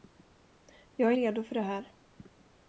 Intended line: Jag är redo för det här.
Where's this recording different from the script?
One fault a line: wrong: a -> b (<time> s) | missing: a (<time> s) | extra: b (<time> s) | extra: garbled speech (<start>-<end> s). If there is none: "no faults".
no faults